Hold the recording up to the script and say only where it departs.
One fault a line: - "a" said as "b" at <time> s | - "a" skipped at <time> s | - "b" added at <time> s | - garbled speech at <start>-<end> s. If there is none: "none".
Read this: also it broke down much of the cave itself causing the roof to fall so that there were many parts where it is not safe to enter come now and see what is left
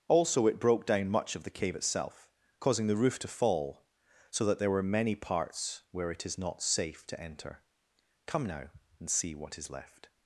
none